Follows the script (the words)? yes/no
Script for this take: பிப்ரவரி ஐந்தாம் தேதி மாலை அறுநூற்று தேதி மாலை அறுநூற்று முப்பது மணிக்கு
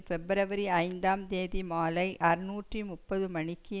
no